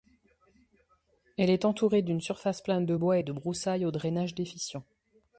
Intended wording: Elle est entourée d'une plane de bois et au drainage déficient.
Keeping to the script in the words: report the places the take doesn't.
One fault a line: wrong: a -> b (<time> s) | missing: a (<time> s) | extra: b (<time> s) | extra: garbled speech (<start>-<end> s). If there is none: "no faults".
extra: surface (2.2 s)
extra: de broussailles (3.2 s)